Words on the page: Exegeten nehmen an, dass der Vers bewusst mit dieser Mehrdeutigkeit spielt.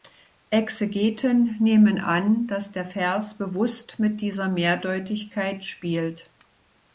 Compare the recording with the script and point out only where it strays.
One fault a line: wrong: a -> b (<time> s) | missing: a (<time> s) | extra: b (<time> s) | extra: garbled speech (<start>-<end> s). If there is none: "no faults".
no faults